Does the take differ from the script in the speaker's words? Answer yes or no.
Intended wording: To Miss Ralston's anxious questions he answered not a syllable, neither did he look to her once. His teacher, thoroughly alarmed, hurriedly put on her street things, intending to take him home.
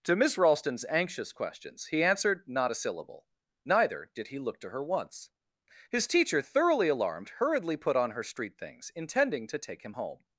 no